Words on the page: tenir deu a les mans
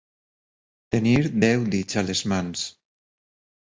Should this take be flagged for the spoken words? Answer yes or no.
yes